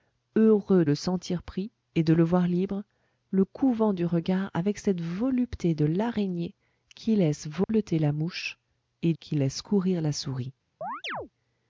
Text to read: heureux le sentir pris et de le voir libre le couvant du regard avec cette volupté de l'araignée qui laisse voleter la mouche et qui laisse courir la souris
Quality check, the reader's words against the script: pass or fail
pass